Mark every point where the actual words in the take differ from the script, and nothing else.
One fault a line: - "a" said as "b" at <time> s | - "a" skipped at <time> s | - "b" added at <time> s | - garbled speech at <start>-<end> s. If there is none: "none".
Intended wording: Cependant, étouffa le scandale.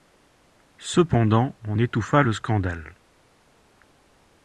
- "on" added at 1.7 s